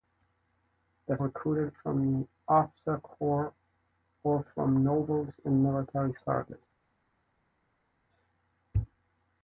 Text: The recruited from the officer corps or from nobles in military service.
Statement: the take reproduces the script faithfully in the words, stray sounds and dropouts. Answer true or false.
true